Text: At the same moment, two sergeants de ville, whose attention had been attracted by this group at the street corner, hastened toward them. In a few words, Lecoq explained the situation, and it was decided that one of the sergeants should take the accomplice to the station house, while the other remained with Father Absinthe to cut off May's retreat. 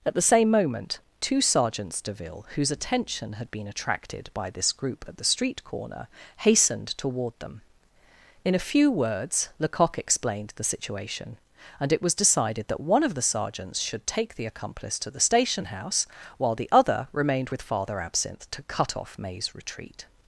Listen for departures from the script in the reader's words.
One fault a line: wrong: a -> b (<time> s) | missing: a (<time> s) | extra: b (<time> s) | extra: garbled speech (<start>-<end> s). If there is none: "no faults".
no faults